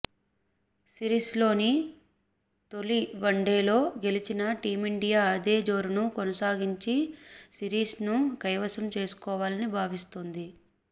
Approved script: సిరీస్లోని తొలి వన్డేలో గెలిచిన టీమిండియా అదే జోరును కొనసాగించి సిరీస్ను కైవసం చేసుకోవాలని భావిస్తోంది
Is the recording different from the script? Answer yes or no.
no